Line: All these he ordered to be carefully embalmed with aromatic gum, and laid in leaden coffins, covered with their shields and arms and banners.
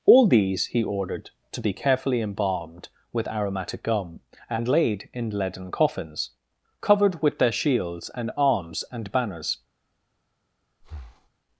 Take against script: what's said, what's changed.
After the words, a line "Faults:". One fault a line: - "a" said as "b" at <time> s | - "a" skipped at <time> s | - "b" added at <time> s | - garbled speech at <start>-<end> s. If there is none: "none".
All these he ordered to be carefully embalmed with aromatic gum, and laid in leaden coffins, covered with their shields and arms and banners.
Faults:
none